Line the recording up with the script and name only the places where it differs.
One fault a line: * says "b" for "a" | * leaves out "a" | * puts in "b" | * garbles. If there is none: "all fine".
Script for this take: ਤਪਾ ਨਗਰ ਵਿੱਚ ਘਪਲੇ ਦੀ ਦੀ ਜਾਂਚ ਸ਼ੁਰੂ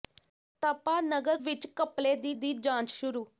all fine